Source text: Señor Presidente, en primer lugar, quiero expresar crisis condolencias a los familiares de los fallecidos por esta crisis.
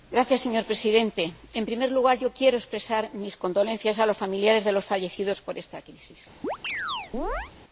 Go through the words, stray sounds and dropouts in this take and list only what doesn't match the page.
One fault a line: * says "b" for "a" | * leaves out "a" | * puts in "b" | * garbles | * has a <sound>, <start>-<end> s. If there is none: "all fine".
* says "mis" for "crisis"
* has a chirp, 6.4-7.5 s